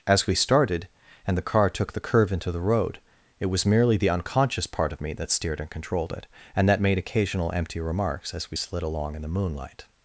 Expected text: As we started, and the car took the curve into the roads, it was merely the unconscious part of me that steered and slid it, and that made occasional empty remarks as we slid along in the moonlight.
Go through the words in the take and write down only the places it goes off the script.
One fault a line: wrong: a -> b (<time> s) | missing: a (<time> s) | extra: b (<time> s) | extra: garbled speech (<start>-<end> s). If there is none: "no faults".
wrong: roads -> road (2.6 s)
wrong: slid -> controlled (5.7 s)